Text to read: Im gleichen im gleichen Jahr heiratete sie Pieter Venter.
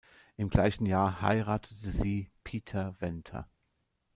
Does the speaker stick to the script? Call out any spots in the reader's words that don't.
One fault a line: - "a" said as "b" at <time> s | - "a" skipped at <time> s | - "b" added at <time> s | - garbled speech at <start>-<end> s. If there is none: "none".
- "im gleichen" skipped at 0.9 s